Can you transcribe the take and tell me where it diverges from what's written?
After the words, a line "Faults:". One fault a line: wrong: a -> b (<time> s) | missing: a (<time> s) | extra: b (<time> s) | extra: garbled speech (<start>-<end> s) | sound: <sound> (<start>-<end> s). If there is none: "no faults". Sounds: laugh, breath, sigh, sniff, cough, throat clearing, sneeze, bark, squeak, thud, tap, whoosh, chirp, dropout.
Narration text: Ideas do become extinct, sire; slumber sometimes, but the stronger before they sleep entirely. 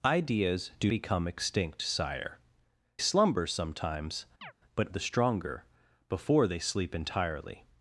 Ideas do become extinct, sire; slumber sometimes, but the stronger before they sleep entirely.
Faults:
sound: chirp (4.4-4.5 s)